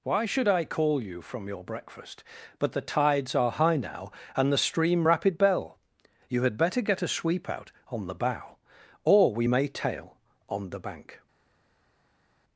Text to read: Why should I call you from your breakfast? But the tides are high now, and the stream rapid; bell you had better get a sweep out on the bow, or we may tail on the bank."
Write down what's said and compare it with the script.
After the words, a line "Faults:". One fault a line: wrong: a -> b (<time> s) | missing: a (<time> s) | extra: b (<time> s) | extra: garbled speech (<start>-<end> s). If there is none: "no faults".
Why should I call you from your breakfast? But the tides are high now, and the stream rapid; bell you had better get a sweep out on the bow, or we may tail on the bank."
Faults:
no faults